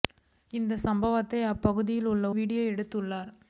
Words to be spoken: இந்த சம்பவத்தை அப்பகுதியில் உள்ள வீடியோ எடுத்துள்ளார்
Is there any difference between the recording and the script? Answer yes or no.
no